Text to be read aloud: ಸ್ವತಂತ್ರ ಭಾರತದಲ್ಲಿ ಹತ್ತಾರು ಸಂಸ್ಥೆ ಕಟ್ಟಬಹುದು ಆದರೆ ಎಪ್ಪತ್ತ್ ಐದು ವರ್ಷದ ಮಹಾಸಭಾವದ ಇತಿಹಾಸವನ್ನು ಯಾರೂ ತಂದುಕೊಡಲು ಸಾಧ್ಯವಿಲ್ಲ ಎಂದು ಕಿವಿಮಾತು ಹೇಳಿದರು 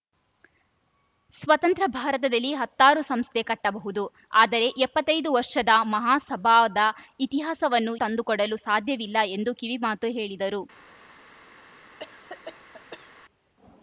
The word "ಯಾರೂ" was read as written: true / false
false